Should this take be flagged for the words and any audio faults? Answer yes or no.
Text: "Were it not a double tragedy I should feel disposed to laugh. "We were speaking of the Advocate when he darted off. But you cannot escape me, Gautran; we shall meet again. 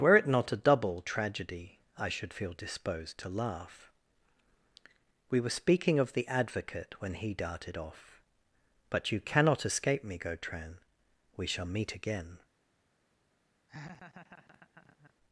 yes